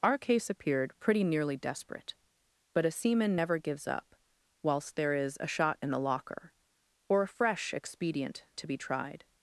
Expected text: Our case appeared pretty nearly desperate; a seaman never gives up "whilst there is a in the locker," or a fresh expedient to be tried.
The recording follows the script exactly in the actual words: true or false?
false